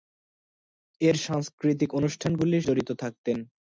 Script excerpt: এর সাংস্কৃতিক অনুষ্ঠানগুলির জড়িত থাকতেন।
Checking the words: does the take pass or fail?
pass